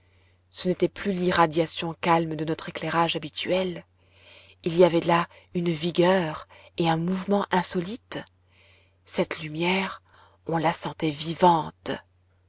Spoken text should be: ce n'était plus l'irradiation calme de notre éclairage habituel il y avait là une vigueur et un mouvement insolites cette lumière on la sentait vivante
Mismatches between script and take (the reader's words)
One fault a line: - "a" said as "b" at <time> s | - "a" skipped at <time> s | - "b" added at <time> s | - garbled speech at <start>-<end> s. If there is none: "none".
none